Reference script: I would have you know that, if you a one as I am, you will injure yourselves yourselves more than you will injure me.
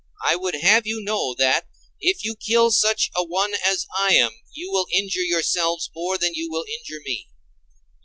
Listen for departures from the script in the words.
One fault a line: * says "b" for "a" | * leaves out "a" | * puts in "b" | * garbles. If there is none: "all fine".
* puts in "kill such"
* leaves out "yourselves"